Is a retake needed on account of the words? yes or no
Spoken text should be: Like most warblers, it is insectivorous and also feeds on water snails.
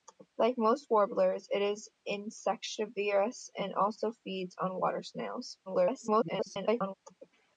yes